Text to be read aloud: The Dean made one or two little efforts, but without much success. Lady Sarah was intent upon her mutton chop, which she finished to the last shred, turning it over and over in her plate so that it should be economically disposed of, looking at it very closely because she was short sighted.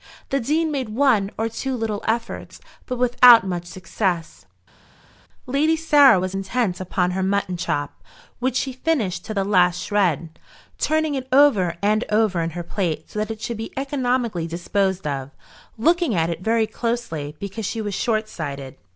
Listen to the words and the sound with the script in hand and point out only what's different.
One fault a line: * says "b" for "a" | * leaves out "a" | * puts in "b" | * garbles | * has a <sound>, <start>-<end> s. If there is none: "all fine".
all fine